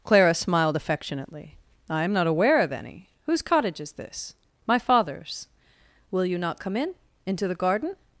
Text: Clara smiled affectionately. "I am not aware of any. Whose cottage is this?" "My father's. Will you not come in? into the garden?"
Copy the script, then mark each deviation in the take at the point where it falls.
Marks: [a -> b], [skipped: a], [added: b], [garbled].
Clara smiled affectionately. "I am not aware of any. Whose cottage is this?" "My father's. Will you not come in? into the garden?"